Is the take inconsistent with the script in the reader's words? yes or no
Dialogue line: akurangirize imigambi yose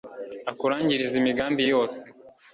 no